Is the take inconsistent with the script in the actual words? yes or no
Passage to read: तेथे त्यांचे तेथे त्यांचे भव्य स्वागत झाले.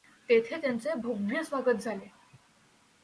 yes